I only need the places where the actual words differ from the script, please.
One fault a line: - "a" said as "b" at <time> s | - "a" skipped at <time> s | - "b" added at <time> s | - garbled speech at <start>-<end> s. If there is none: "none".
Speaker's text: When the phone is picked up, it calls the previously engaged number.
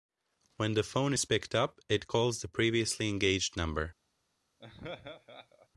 none